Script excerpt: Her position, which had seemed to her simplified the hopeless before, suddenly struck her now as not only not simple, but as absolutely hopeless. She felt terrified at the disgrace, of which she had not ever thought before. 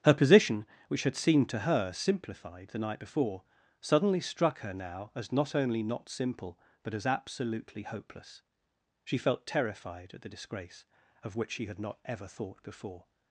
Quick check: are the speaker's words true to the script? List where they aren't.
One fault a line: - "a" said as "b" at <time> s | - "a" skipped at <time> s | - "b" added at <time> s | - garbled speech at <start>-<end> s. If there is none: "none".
- "hopeless" said as "night" at 2.8 s